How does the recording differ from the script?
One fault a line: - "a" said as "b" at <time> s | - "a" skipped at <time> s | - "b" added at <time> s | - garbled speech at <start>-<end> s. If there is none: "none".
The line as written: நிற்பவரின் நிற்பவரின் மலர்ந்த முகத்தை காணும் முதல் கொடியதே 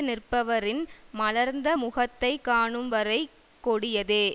- "நிற்பவரின்" skipped at 0.8 s
- "முதல்" said as "வரை" at 2.9 s